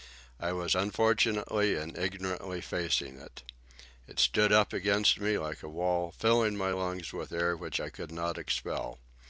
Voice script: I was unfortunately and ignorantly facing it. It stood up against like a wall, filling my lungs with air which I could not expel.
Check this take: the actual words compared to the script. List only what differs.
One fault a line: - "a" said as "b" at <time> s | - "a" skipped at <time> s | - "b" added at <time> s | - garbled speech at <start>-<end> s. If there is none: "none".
- "me" added at 5.2 s